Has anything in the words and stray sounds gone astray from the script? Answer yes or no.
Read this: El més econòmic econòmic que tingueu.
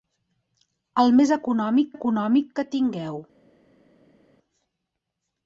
no